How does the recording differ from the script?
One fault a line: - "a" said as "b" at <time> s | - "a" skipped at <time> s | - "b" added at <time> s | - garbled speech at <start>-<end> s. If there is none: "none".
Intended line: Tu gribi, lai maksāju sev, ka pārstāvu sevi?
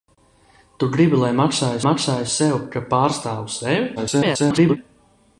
- "maksāju" added at 1.9 s
- garbled speech at 4.0-4.8 s